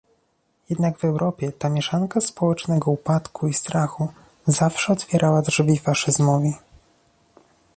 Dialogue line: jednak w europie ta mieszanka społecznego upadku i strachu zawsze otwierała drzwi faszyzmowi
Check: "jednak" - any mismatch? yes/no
no